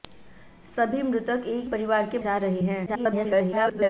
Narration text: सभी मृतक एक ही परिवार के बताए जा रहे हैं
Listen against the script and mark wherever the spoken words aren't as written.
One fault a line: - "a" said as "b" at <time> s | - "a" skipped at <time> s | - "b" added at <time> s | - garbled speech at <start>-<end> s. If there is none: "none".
- "ही" skipped at 1.7 s
- "बताए" skipped at 2.2 s
- garbled speech at 2.9-3.9 s